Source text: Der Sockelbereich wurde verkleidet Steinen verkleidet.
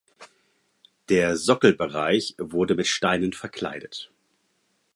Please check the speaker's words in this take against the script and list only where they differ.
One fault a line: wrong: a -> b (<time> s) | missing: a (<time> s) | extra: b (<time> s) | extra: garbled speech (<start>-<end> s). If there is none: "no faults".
wrong: verkleidet -> mit (2.7 s)